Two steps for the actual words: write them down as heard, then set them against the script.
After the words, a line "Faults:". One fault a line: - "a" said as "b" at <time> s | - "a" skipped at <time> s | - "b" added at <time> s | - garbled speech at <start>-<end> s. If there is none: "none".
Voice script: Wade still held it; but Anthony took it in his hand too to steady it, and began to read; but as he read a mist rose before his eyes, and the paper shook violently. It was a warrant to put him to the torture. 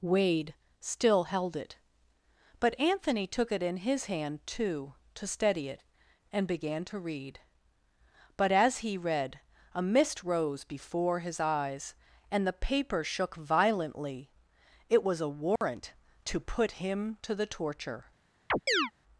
Wade still held it; but Anthony took it in his hand too to steady it, and began to read; but as he read a mist rose before his eyes, and the paper shook violently. It was a warrant to put him to the torture.
Faults:
none